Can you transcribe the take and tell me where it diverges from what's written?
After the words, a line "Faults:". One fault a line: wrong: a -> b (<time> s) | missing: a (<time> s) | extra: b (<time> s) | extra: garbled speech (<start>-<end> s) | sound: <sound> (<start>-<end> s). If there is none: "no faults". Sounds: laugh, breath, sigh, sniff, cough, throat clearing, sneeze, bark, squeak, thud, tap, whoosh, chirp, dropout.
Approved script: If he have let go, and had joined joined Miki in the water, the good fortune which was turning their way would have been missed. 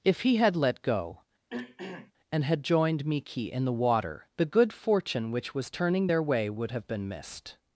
If he had let go, and had joined Miki in the water, the good fortune which was turning their way would have been missed.
Faults:
wrong: have -> had (0.4 s)
sound: throat clearing (1.5-2.1 s)
missing: joined (3.0 s)